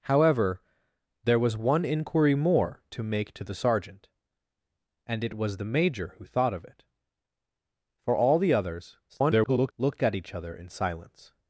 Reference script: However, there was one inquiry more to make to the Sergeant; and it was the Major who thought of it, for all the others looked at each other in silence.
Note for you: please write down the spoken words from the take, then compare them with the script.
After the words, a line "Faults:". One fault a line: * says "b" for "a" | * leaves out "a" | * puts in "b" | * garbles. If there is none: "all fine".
However, there was one inquiry more to make to the Sergeant; and it was the Major who thought of it, for all the others [garbled] looked at each other in silence.
Faults:
* garbles